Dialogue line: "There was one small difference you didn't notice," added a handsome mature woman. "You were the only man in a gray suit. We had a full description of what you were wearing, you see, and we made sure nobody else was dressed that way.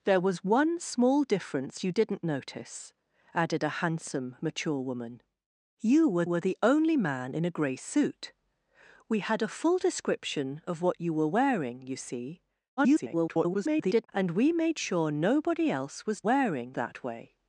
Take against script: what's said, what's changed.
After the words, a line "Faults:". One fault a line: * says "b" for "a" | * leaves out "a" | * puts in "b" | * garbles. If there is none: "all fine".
"There was one small difference you didn't notice," added a handsome mature woman. "You were were the only man in a gray suit. We had a full description of what you were wearing, you see, [garbled] and we made sure nobody else was wearing that way.
Faults:
* puts in "were"
* garbles
* says "wearing" for "dressed"